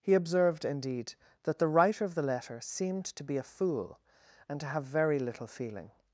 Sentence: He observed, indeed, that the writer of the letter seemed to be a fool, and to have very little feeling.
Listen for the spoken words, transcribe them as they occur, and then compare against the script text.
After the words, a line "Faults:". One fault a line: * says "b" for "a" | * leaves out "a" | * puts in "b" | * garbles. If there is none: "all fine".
He observed, indeed, that the writer of the letter seemed to be a fool, and to have very little feeling.
Faults:
all fine